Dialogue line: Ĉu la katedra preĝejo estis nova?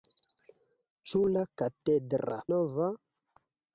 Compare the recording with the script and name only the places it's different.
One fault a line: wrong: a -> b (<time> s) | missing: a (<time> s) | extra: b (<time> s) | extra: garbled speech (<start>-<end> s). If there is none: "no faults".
missing: preĝejo estis (2.4 s)